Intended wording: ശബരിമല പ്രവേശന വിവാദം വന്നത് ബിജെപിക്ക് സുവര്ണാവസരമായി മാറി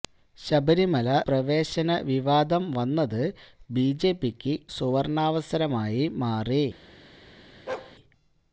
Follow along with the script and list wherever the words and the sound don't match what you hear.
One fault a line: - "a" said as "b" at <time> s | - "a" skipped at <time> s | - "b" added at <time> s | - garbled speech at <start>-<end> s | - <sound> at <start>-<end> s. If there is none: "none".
- bark at 7.7-8.0 s